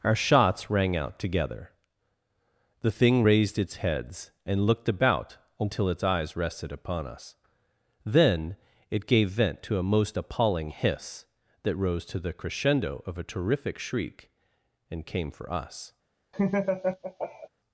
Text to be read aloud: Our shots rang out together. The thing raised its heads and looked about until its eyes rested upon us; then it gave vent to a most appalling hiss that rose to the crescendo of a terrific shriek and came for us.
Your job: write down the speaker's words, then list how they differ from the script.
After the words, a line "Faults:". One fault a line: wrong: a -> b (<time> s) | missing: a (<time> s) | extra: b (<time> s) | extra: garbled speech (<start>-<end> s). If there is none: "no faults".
Our shots rang out together. The thing raised its heads and looked about until its eyes rested upon us; then it gave vent to a most appalling hiss that rose to the crescendo of a terrific shriek and came for us.
Faults:
no faults